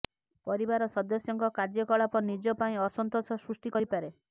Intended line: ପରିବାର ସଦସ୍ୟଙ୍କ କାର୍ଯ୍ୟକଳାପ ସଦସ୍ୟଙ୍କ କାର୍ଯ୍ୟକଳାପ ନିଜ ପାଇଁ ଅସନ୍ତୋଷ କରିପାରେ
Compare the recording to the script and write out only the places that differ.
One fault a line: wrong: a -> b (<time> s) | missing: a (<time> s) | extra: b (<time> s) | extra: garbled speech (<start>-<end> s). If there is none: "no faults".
missing: ସଦସ୍ୟଙ୍କ କାର୍ଯ୍ୟକଳାପ (2.2 s)
extra: ସୃଷ୍ଟି (3.4 s)